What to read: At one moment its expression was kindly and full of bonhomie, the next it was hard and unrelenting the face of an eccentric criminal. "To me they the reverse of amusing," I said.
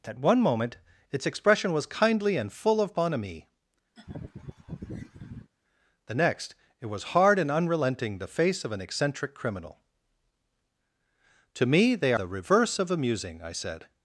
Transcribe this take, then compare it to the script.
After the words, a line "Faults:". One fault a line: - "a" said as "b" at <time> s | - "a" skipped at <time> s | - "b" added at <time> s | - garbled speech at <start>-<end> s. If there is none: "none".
At one moment its expression was kindly and full of bonhomie, the next it was hard and unrelenting the face of an eccentric criminal. "To me they the reverse of amusing," I said.
Faults:
none